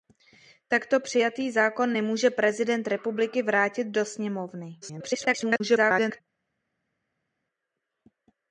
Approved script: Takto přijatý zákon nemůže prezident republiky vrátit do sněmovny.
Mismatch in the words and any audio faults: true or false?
true